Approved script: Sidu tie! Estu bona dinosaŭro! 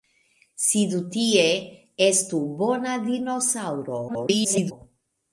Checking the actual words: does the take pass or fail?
fail